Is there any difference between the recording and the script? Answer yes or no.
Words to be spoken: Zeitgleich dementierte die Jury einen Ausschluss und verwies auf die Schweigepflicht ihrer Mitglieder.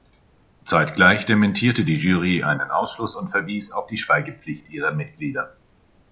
no